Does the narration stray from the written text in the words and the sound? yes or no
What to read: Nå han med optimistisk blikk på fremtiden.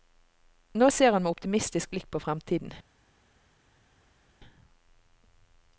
yes